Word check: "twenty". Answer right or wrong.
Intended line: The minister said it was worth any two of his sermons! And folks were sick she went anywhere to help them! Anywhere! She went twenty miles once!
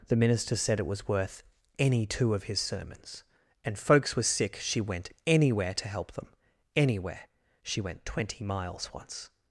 right